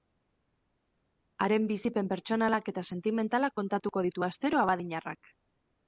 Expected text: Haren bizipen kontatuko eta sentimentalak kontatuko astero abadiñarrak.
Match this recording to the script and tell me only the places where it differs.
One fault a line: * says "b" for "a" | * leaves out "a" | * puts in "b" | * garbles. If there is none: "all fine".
* says "pertsonalak" for "kontatuko"
* puts in "ditu"